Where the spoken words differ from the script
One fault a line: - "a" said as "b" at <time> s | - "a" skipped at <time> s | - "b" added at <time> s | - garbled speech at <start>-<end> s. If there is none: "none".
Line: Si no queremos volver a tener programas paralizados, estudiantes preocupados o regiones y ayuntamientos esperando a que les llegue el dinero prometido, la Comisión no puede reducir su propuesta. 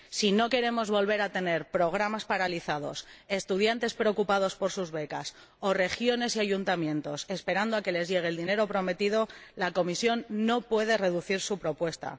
- "por sus becas" added at 4.6 s